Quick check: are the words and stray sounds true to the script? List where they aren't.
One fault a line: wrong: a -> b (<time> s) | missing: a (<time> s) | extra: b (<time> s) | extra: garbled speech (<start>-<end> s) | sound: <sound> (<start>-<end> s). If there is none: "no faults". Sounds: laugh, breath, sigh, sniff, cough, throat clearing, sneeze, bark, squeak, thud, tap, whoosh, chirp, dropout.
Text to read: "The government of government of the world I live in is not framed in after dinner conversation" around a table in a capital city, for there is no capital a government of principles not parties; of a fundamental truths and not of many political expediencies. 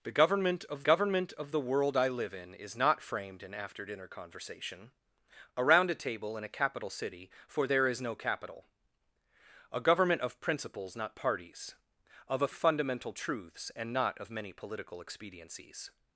no faults